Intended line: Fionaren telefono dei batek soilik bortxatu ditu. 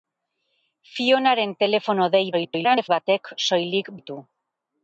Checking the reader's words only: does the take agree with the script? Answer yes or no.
no